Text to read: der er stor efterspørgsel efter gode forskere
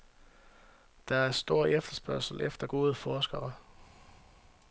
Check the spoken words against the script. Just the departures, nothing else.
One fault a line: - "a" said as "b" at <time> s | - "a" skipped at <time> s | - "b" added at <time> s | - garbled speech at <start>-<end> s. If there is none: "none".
none